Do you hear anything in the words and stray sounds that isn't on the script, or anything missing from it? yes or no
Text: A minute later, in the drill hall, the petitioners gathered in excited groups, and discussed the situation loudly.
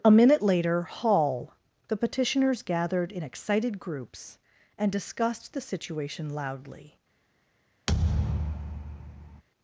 yes